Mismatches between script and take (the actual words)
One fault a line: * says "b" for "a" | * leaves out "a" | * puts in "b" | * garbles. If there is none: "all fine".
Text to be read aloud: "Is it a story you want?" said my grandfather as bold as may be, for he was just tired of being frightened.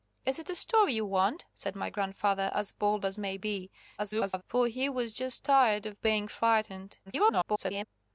* garbles
* garbles